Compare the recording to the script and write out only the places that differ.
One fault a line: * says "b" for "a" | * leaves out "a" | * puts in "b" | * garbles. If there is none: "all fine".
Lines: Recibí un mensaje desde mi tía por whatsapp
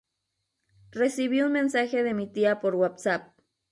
* says "de" for "desde"